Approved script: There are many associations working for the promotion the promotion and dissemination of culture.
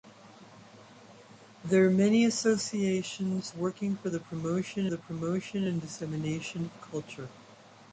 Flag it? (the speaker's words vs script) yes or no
no